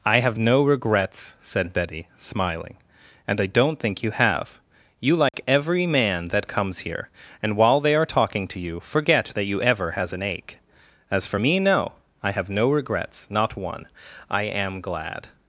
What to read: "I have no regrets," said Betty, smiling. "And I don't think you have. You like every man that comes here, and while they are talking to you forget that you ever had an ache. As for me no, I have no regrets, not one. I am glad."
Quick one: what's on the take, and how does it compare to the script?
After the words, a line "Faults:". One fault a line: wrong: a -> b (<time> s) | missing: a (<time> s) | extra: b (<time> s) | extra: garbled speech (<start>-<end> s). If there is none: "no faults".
"I have no regrets," said Betty, smiling. "And I don't think you have. You like every man that comes here, and while they are talking to you forget that you ever has an ache. As for me no, I have no regrets, not one. I am glad."
Faults:
wrong: had -> has (9.9 s)